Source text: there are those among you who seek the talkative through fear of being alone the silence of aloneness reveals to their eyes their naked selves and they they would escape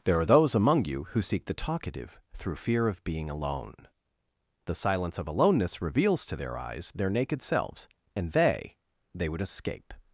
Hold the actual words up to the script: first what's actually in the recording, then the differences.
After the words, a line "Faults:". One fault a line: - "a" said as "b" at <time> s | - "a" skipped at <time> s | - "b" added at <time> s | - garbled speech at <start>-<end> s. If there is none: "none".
there are those among you who seek the talkative through fear of being alone the silence of aloneness reveals to their eyes their naked selves and they they would escape
Faults:
none